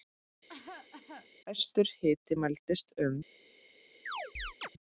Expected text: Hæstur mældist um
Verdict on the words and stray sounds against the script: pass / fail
fail